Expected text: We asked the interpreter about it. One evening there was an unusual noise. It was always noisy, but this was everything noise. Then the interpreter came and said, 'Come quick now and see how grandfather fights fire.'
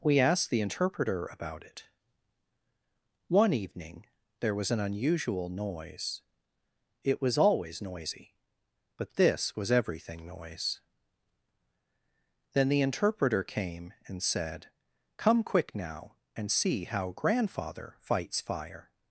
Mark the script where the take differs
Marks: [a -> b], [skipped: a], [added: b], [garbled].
We asked the interpreter about it. One evening there was an unusual noise. It was always noisy, but this was everything noise. Then the interpreter came and said, 'Come quick now and see how grandfather fights fire.'